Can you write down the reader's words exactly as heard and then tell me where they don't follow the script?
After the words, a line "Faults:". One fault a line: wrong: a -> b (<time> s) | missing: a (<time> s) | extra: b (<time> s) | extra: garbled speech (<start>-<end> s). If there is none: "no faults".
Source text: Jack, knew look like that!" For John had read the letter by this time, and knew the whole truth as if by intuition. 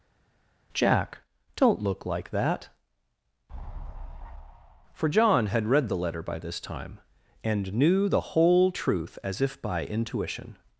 Jack, don't look like that!" For John had read the letter by this time, and knew the whole truth as if by intuition.
Faults:
wrong: knew -> don't (1.6 s)